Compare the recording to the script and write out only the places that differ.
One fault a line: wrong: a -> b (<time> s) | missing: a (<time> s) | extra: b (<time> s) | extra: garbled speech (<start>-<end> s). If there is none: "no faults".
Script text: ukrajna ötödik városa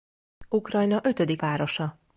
no faults